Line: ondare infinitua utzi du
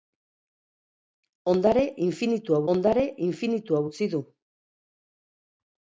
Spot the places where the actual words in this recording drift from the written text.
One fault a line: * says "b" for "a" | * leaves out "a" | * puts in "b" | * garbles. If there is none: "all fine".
* puts in "ondare infinitua"